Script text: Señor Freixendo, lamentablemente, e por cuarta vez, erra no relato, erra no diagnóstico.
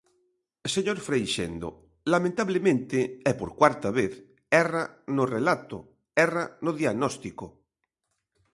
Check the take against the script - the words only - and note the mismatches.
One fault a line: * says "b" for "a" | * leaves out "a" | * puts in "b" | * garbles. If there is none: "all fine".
all fine